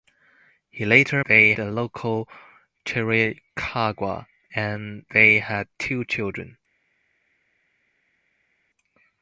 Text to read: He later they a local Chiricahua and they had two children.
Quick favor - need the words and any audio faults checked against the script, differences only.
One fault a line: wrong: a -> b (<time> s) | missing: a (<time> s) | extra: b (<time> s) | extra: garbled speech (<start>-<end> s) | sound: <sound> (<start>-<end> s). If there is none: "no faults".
no faults